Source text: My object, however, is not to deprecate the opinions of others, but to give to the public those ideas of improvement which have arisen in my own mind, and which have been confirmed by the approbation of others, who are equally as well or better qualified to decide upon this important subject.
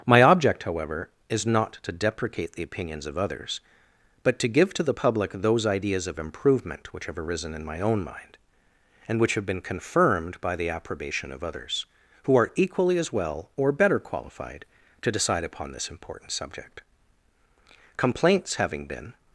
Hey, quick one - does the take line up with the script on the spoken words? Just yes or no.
no